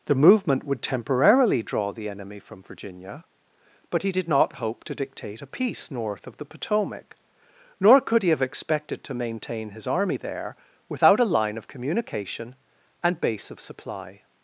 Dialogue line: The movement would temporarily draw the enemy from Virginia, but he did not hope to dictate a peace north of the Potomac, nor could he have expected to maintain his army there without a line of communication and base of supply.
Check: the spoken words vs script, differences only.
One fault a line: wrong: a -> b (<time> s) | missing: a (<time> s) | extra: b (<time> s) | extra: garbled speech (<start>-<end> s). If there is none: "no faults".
no faults